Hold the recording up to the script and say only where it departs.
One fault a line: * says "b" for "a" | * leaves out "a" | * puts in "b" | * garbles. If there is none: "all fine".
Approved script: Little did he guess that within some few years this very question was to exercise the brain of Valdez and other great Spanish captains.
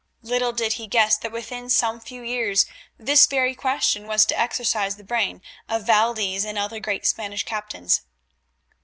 all fine